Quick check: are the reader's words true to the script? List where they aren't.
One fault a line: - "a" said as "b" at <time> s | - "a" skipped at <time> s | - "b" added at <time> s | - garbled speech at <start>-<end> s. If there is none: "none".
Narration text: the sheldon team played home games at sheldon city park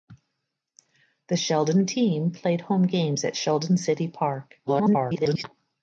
- garbled speech at 4.7-5.4 s